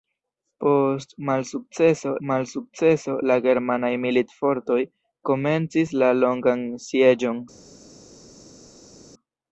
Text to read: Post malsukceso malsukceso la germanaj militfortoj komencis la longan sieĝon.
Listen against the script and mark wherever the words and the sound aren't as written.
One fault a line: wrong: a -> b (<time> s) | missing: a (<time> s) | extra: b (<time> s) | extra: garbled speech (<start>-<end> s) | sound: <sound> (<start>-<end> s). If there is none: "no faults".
no faults